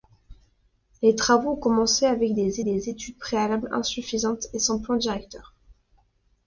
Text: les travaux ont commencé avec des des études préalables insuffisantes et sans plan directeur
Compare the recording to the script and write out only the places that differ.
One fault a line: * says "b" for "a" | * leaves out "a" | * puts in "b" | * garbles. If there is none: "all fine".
all fine